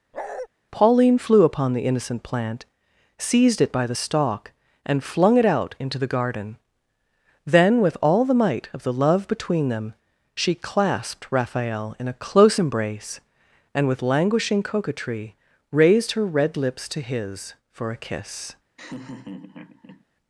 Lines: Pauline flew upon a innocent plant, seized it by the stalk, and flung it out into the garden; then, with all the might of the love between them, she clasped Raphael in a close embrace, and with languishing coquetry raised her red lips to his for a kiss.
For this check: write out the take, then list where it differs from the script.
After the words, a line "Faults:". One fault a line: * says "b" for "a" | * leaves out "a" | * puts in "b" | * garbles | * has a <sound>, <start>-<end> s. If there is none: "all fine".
Pauline flew upon the innocent plant, seized it by the stalk, and flung it out into the garden; then, with all the might of the love between them, she clasped Raphael in a close embrace, and with languishing coquetry raised her red lips to his for a kiss.
Faults:
* has a bark, 0.1-0.5 s
* says "the" for "a"
* has a laugh, 18.8-20.0 s